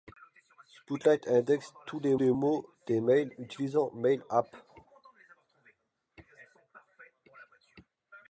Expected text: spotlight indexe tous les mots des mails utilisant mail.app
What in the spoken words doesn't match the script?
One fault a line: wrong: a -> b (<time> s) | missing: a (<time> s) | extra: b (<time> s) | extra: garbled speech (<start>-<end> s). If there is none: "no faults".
extra: les (2.1 s)